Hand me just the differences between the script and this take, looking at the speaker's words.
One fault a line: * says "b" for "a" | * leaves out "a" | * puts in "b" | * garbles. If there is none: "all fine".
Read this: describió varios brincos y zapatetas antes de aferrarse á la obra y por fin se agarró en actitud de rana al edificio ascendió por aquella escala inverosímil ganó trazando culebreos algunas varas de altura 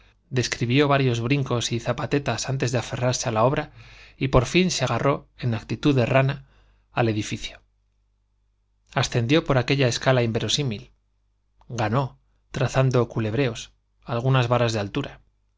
all fine